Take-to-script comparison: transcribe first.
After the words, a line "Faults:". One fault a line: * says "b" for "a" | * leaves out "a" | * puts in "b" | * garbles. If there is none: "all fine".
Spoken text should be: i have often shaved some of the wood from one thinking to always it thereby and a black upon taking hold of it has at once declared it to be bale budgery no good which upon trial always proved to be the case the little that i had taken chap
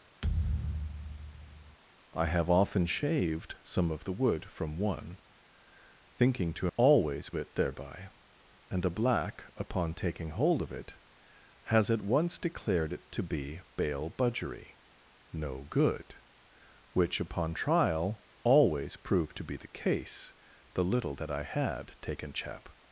i have often shaved some of the wood from one thinking to always it thereby and a black upon taking hold of it has at once declared it to be bale budgery no good which upon trial always proved to be the case the little that i had taken chap
Faults:
all fine